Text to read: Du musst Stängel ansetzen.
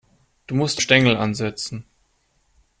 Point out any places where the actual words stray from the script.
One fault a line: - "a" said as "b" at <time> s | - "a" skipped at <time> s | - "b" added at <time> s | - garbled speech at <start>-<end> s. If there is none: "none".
none